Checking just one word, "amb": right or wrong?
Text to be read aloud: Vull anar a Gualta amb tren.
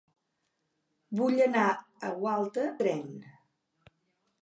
wrong